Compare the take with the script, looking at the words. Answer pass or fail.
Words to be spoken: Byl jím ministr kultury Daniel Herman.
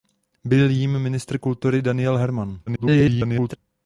fail